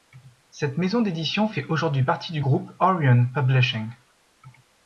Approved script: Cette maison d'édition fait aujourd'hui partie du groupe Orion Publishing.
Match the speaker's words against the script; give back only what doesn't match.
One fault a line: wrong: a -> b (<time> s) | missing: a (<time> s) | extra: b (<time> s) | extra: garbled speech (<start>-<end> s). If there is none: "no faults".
no faults